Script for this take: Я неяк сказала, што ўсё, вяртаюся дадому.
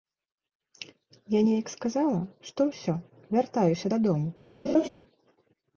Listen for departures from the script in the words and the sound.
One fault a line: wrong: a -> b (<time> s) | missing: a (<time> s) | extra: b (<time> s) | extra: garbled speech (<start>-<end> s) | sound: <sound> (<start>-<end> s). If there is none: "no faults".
sound: laugh (4.7-4.9 s)